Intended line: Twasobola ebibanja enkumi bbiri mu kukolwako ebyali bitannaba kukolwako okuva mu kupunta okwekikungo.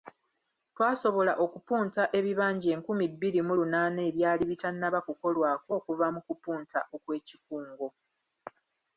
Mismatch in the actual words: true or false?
true